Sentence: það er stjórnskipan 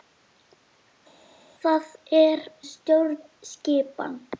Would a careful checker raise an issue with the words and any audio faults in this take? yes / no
no